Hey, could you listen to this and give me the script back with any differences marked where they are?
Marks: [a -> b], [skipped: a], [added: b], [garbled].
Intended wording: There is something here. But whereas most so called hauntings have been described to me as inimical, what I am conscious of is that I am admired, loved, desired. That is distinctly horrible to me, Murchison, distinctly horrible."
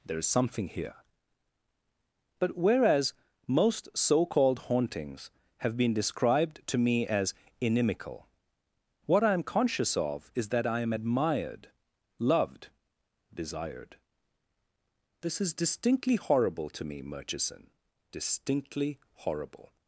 There is something here. But whereas most so called hauntings have been described to me as inimical, what I am conscious of is that I am admired, loved, desired. [That -> This] is distinctly horrible to me, Murchison, distinctly horrible."